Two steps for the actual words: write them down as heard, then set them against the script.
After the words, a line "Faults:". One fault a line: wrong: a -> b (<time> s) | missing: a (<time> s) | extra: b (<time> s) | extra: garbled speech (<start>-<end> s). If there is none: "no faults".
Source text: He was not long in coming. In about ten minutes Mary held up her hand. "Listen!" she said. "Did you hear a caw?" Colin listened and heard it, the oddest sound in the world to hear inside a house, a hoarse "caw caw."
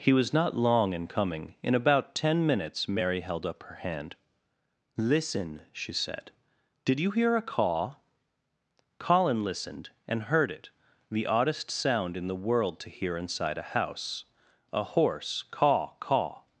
He was not long in coming. In about ten minutes Mary held up her hand. "Listen!" she said. "Did you hear a caw?" Colin listened and heard it, the oddest sound in the world to hear inside a house, a hoarse "caw caw."
Faults:
no faults